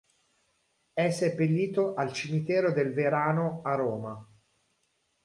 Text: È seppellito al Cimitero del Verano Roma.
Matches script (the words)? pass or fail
fail